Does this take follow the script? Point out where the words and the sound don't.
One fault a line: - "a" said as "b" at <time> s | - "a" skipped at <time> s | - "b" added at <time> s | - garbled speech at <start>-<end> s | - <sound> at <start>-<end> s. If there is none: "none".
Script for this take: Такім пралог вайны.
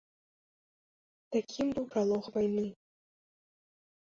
- "быў" added at 1.8 s